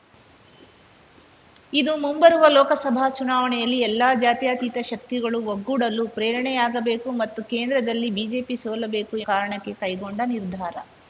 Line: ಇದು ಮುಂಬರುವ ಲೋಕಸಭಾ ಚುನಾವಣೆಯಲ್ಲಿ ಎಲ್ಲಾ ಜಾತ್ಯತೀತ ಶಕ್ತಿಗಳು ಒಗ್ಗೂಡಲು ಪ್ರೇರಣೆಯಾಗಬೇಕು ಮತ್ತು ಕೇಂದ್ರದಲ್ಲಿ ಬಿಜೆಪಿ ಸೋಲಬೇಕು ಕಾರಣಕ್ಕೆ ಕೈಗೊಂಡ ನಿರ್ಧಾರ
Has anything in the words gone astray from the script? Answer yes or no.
no